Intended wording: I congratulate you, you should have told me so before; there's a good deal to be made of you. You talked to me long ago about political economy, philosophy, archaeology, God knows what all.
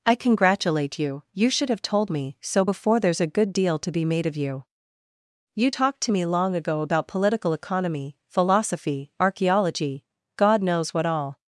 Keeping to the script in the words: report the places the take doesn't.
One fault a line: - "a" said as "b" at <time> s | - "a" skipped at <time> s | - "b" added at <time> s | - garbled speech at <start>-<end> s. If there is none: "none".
none